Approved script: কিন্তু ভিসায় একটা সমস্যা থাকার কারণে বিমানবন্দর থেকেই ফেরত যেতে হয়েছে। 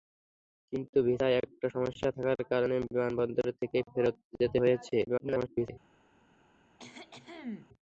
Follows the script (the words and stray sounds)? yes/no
no